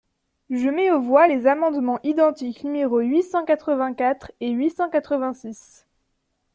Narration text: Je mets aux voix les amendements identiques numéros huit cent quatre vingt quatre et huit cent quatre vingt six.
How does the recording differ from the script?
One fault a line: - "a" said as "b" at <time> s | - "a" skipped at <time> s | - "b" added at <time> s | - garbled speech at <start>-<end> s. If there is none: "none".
none